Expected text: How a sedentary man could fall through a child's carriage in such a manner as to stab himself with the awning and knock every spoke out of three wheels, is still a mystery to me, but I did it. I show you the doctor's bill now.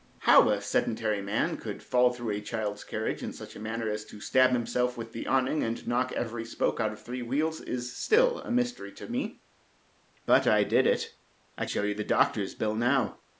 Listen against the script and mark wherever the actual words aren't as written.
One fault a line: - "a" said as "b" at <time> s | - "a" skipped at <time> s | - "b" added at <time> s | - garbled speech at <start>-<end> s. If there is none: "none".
none